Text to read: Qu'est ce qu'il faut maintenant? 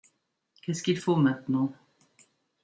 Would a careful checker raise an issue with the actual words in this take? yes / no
no